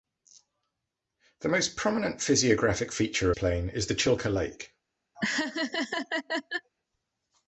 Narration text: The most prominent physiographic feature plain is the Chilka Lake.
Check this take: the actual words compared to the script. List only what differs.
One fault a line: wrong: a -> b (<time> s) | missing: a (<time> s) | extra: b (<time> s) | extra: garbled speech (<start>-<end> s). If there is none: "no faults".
no faults